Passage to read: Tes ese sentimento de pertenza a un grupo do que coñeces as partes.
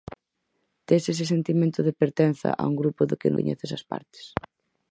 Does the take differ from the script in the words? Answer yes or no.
no